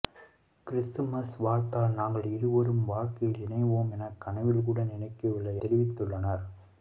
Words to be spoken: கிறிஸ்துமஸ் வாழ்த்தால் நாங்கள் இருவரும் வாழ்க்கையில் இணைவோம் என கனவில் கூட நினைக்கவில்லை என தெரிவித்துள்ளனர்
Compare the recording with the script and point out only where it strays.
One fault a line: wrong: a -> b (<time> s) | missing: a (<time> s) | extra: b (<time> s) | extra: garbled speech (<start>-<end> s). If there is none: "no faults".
missing: என (5.6 s)